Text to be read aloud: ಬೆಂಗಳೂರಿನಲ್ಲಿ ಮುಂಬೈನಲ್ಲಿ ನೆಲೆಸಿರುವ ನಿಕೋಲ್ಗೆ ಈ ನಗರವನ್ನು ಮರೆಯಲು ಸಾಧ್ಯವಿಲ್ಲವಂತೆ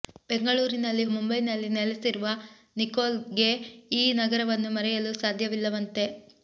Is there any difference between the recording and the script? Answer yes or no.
no